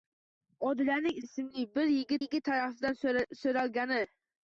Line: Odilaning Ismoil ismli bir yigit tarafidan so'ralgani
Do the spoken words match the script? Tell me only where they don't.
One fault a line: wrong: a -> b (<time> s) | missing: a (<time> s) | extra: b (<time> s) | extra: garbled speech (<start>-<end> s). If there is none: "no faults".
missing: Ismoil (1.2 s)
extra: yigit (2.2 s)